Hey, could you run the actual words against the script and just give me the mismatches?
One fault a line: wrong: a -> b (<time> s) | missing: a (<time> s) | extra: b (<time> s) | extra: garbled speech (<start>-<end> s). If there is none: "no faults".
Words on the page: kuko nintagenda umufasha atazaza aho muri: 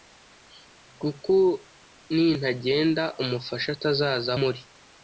missing: aho (4.3 s)